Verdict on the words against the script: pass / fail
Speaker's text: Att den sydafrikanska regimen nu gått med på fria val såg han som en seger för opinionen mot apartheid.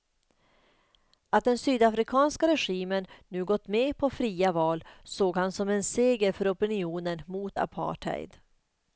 pass